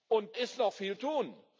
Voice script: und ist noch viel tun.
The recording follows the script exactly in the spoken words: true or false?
true